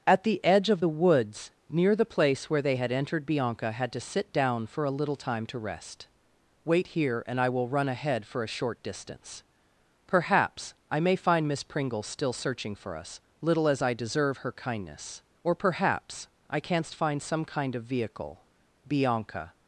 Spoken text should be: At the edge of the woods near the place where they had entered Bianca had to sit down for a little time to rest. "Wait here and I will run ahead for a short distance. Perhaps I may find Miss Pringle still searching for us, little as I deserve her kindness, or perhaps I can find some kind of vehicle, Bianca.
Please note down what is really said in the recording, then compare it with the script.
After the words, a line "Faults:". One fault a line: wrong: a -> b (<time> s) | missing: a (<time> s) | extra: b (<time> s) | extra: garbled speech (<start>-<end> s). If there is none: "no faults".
At the edge of the woods near the place where they had entered Bianca had to sit down for a little time to rest. "Wait here and I will run ahead for a short distance. Perhaps I may find Miss Pringle still searching for us, little as I deserve her kindness, or perhaps I canst find some kind of vehicle, Bianca.
Faults:
wrong: can -> canst (16.6 s)